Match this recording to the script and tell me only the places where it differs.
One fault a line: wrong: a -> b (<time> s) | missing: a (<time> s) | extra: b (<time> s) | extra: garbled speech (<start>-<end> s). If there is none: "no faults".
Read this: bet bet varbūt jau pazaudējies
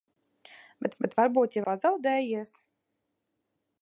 no faults